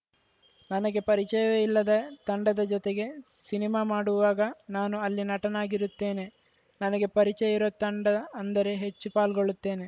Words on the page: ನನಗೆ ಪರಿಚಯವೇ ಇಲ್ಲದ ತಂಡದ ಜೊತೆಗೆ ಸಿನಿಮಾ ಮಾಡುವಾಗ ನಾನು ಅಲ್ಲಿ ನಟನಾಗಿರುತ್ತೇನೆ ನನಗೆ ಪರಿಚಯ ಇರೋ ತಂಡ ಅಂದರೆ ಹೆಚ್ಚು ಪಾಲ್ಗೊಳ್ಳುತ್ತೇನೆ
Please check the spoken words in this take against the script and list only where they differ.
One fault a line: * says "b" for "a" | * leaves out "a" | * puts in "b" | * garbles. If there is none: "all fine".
all fine